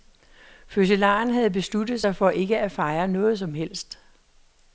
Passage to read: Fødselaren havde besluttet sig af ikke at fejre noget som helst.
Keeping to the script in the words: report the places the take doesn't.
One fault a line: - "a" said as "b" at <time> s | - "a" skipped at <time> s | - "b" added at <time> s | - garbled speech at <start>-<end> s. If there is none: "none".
- "af" said as "for" at 2.2 s